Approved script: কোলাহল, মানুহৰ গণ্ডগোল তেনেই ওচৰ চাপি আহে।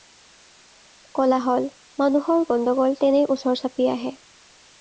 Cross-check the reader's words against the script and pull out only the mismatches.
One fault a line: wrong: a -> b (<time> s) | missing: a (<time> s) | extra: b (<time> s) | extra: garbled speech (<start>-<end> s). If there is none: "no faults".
no faults